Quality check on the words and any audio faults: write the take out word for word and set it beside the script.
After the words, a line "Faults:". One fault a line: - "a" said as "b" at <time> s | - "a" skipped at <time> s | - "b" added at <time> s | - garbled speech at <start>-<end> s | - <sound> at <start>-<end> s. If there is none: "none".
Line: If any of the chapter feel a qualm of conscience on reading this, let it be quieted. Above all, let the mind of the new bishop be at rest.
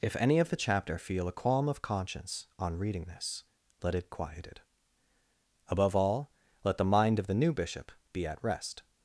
If any of the chapter feel a qualm of conscience on reading this, let it quieted. Above all, let the mind of the new bishop be at rest.
Faults:
- "be" skipped at 4.1 s